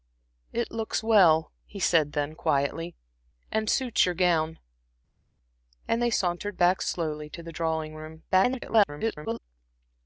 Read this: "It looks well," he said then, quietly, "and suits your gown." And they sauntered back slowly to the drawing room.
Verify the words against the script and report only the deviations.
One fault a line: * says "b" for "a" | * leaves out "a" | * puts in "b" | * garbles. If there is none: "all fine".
* garbles